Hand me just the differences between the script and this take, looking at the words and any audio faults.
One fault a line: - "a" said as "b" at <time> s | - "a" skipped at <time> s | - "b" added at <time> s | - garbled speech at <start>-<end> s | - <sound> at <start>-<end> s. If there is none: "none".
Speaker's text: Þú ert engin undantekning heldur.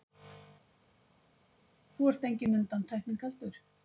none